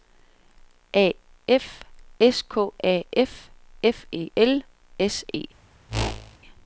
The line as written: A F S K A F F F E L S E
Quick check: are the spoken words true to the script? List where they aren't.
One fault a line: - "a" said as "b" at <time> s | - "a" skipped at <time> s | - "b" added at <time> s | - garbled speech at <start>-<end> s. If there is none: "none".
- "F" skipped at 4.1 s